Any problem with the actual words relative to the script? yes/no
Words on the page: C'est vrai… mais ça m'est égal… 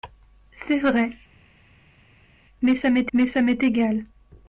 yes